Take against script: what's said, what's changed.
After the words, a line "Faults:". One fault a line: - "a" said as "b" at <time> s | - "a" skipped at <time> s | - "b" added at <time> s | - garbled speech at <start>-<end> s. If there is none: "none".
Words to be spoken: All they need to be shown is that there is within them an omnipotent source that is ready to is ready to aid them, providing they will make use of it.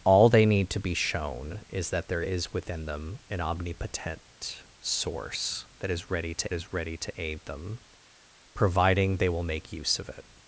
All they need to be shown is that there is within them an omnipotent source that is ready to is ready to aid them, providing they will make use of it.
Faults:
none